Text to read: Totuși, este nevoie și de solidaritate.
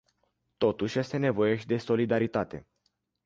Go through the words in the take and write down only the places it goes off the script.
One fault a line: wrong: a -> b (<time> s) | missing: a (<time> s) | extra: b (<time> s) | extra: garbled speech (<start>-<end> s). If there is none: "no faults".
no faults